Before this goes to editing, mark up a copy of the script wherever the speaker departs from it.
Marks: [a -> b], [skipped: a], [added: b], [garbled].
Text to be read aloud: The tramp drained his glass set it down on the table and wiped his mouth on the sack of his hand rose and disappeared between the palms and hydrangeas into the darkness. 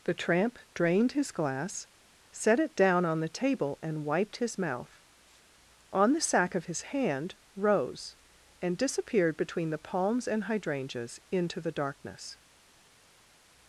The tramp drained his glass set it down on the table and wiped his mouth on the sack of his hand rose and disappeared between the palms and hydrangeas into the darkness.